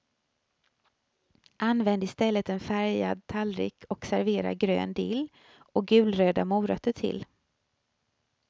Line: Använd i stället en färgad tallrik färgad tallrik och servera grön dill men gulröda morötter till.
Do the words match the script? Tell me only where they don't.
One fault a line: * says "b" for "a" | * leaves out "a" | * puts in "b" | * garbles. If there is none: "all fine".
* leaves out "färgad tallrik"
* says "och" for "men"